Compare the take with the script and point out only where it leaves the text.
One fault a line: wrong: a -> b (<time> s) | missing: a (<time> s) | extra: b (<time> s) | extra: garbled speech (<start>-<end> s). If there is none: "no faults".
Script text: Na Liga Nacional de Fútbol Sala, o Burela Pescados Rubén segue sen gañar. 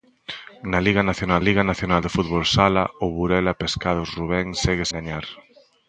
extra: Liga Nacional (1.5 s)
missing: sen (4.8 s)